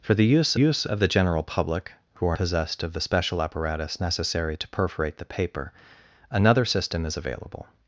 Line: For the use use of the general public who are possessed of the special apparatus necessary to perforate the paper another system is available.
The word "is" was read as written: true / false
true